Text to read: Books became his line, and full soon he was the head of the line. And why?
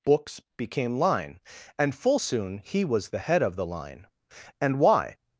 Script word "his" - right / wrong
wrong